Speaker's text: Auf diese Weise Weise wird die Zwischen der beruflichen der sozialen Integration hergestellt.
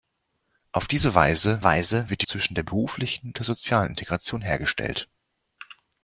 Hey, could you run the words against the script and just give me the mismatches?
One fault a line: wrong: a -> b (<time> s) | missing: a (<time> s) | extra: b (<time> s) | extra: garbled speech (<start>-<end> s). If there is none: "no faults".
no faults